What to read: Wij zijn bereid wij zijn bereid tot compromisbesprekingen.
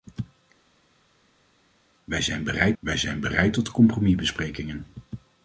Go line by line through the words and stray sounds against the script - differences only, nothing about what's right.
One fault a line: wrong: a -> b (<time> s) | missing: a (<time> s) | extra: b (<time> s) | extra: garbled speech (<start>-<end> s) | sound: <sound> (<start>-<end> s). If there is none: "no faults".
no faults